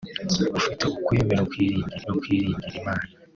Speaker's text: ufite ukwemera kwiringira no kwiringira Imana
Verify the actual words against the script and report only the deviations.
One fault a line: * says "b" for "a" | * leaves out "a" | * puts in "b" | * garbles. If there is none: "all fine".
all fine